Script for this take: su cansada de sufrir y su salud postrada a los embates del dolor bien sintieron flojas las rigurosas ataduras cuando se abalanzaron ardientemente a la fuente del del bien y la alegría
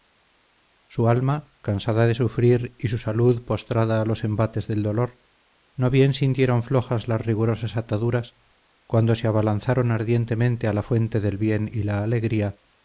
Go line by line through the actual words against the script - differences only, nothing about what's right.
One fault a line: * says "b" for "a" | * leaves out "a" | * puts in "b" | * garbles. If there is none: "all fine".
* puts in "alma"
* puts in "no"
* leaves out "del"